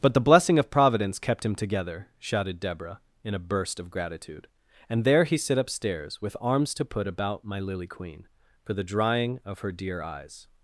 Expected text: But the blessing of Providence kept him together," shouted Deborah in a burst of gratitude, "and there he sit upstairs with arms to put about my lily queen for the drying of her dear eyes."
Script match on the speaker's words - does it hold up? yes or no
yes